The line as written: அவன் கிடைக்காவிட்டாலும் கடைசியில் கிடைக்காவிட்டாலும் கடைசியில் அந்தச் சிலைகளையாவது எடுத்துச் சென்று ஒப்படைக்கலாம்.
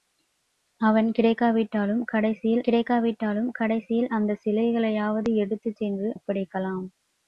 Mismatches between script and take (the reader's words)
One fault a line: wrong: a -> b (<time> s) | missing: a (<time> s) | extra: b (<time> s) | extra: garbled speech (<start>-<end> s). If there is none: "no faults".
no faults